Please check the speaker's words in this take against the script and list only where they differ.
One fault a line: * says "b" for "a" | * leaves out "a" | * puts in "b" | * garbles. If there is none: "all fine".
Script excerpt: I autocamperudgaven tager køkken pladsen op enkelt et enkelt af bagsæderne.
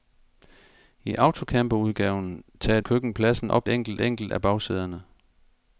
all fine